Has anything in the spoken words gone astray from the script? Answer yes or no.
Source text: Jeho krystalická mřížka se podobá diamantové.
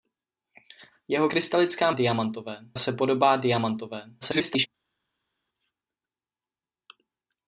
yes